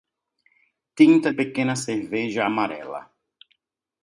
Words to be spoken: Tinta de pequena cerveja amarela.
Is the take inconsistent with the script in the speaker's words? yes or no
yes